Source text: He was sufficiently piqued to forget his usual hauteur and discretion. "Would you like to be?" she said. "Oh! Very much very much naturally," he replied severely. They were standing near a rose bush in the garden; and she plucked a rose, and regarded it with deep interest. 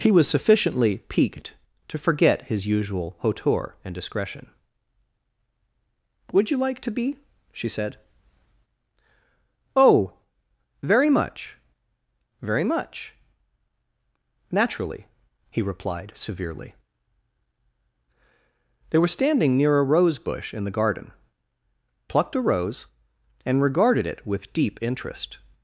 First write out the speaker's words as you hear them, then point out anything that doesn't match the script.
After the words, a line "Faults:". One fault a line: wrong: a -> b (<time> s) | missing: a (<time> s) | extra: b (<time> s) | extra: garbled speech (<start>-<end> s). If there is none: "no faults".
He was sufficiently piqued to forget his usual hauteur and discretion. "Would you like to be?" she said. "Oh! Very much very much naturally," he replied severely. They were standing near a rose bush in the garden; plucked a rose, and regarded it with deep interest.
Faults:
missing: and she (21.1 s)